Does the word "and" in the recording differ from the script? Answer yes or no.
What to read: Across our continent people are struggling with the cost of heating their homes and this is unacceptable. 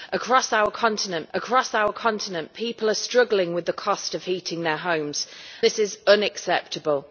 yes